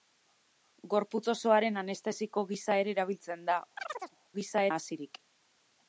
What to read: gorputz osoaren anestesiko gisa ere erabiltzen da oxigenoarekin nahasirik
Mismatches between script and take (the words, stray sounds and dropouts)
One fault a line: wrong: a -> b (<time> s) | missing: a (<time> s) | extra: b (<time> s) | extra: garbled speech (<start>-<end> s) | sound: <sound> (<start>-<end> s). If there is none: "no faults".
sound: chirp (3.8-4.2 s)
wrong: oxigenoarekin -> gisa (4.4 s)